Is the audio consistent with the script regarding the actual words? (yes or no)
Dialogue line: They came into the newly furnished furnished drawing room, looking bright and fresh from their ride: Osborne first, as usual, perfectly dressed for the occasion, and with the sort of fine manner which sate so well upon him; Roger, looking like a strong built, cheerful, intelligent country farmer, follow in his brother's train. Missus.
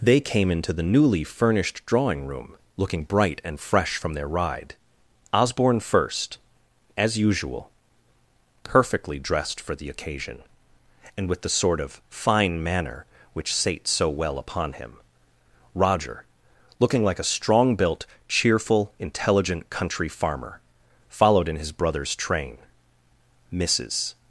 no